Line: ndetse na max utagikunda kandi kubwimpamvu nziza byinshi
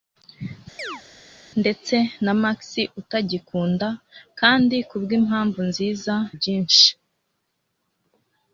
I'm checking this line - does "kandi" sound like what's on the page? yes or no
yes